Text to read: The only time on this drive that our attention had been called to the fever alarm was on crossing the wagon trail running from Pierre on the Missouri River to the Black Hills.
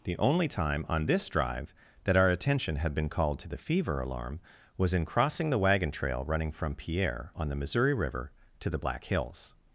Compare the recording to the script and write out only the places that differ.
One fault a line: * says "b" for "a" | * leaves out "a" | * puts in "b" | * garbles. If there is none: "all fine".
* says "in" for "on"